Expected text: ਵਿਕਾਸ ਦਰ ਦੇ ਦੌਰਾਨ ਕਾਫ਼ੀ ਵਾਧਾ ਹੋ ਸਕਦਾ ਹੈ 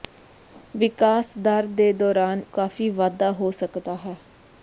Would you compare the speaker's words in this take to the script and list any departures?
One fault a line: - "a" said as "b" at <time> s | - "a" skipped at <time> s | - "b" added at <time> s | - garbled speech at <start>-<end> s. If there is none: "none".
none